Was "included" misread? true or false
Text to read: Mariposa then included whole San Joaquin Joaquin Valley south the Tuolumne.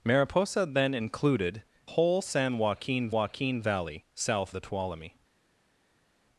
false